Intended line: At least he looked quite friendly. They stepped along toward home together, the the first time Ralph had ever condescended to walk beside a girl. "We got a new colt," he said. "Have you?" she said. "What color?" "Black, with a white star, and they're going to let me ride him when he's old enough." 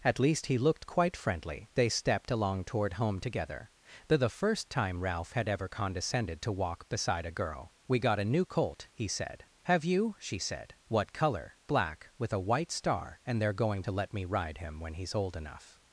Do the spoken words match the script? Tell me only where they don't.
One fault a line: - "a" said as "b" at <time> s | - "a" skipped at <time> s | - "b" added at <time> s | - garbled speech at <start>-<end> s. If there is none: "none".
none